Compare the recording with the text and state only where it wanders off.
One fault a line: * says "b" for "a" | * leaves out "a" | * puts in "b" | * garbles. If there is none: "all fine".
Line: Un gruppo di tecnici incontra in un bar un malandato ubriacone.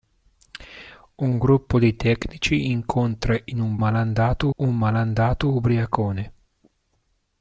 * says "malandato" for "bar"